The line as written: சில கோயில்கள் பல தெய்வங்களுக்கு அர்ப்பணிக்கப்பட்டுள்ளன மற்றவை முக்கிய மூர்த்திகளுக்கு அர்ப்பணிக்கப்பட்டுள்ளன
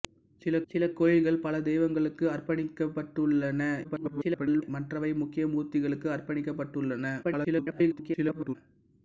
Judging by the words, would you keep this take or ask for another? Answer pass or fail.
fail